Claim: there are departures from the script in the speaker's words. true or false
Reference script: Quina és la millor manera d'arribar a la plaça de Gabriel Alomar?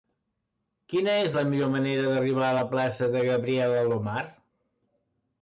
false